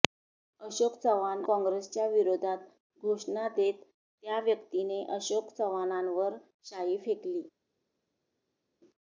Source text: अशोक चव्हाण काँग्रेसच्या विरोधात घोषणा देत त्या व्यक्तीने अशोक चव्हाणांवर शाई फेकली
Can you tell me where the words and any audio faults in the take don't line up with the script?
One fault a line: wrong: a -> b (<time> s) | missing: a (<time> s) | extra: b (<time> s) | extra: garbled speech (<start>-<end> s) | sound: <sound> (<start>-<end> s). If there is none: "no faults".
no faults